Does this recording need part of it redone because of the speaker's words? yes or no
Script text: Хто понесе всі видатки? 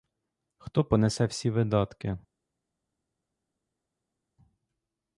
no